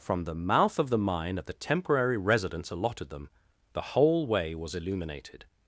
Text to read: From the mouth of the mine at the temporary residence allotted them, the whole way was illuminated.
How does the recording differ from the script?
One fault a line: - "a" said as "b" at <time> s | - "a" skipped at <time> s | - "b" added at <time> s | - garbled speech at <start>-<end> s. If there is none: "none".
none